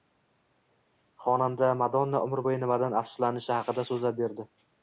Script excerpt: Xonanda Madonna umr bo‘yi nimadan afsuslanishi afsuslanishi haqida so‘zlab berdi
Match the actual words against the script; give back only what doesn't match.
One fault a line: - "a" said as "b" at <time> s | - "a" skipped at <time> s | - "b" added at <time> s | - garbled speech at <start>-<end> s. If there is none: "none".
- "afsuslanishi" skipped at 3.5 s